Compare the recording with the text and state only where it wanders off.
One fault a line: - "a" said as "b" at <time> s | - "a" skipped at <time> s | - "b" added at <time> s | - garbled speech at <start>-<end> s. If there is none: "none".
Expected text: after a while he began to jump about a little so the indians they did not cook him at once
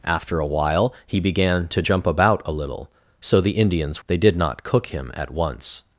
none